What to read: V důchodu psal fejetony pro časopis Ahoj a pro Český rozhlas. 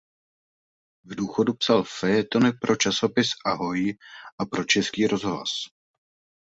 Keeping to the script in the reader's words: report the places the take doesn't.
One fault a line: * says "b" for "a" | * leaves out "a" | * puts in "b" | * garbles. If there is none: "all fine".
all fine